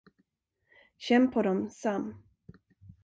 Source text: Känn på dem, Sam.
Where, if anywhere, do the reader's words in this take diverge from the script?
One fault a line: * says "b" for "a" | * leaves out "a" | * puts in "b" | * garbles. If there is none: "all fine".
all fine